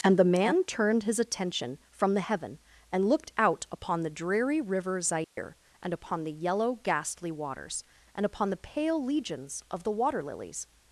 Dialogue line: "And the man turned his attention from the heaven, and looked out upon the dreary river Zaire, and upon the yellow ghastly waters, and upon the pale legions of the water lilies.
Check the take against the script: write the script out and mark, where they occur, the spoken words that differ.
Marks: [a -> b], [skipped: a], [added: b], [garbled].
"And the man turned his attention from the heaven, and looked out upon the dreary river Zaire, and upon the yellow ghastly waters, and upon the pale legions of the water lilies.